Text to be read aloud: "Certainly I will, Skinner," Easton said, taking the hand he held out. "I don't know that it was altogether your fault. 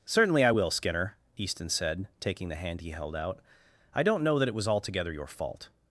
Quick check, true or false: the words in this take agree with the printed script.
true